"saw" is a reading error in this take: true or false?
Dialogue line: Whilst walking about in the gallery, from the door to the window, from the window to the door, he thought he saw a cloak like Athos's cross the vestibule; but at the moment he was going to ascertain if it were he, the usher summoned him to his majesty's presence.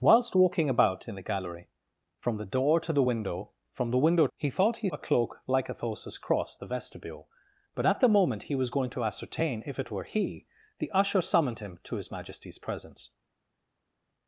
true